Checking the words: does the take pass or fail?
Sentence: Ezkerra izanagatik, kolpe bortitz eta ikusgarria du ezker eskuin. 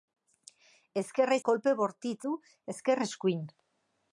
fail